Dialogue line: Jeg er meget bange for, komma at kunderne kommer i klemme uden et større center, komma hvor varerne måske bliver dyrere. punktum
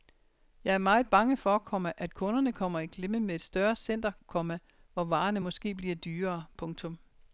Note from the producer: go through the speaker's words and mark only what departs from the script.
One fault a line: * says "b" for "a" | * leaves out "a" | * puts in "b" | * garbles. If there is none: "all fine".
* says "med" for "uden"